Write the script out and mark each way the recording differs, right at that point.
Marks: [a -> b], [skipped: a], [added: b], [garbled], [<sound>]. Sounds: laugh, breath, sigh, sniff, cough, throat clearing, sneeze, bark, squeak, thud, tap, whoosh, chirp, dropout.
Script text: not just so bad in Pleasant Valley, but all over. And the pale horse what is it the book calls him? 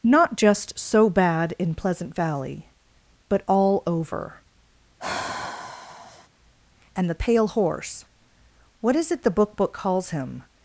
not just so bad in Pleasant Valley, but all over. [sigh] And the pale horse what is it the book [added: book] calls him?